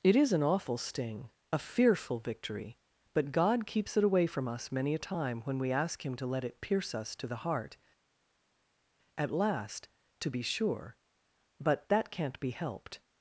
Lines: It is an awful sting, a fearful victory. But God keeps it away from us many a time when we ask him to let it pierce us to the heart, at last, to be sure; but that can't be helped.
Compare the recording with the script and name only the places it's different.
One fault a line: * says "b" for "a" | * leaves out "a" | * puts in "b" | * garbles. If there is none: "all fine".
all fine